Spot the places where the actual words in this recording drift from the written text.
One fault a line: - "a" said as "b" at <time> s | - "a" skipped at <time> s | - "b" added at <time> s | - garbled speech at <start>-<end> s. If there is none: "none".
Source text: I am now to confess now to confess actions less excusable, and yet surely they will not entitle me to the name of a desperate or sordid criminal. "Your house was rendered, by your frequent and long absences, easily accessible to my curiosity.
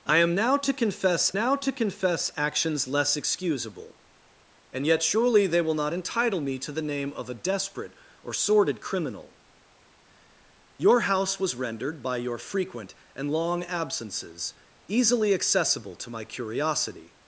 none